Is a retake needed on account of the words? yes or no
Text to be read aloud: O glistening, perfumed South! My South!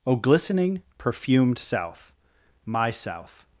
no